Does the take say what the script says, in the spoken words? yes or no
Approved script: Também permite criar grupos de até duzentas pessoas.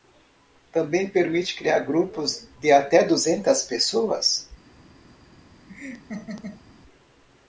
yes